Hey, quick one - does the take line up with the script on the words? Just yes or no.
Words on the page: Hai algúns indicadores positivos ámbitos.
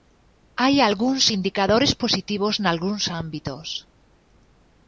no